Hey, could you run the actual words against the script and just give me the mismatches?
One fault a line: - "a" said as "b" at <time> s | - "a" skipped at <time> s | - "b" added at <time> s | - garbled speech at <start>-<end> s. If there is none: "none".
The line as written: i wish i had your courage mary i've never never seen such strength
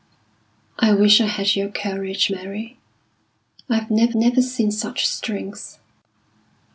none